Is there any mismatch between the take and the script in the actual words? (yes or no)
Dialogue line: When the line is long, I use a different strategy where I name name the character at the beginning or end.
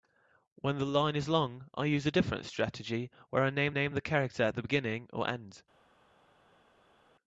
no